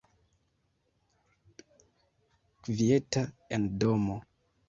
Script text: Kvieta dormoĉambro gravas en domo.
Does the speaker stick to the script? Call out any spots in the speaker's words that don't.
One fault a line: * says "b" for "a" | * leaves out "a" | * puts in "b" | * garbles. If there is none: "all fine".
* leaves out "dormoĉambro gravas"